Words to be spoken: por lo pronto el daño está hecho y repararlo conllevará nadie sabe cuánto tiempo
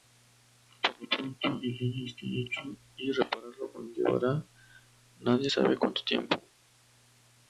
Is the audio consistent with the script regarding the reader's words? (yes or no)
yes